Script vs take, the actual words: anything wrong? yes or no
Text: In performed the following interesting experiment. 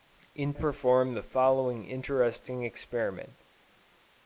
no